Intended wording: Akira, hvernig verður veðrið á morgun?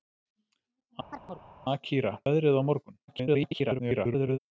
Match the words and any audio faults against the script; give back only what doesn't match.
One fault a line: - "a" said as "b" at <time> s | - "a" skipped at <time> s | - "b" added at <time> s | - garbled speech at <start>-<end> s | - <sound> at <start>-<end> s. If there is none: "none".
- chirp at 1.1-1.5 s
- "hvernig verður" skipped at 2.1 s
- garbled speech at 3.1-4.4 s